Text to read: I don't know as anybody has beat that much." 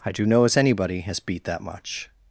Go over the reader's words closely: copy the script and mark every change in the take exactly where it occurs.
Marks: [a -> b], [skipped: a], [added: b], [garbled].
I [don't -> do] know as anybody has beat that much."